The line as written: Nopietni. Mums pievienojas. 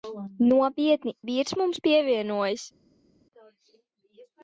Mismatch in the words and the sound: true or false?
true